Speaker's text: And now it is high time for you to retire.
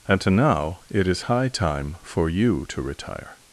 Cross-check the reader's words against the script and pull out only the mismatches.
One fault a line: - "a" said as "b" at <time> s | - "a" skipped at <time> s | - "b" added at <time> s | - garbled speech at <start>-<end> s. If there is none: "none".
none